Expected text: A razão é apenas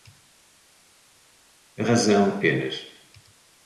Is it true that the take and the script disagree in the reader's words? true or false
true